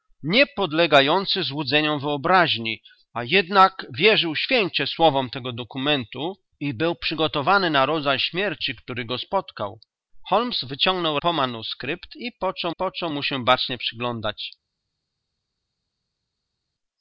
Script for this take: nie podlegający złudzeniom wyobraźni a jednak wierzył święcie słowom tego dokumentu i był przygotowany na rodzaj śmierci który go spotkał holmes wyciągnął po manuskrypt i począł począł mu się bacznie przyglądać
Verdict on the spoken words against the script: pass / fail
pass